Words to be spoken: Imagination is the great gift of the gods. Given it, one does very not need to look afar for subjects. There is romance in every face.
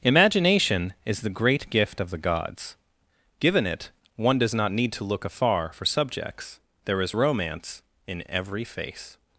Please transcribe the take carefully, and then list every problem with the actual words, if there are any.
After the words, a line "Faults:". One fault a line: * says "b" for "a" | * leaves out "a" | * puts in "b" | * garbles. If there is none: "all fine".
Imagination is the great gift of the gods. Given it, one does not need to look afar for subjects. There is romance in every face.
Faults:
* leaves out "very"